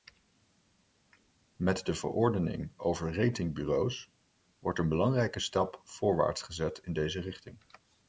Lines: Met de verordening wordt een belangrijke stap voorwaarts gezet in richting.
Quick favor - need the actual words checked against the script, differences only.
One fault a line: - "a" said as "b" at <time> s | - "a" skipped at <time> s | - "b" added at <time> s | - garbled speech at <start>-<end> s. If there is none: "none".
- "over ratingbureaus" added at 2.8 s
- "deze" added at 6.9 s